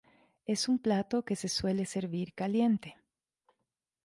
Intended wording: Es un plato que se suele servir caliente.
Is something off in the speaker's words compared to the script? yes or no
no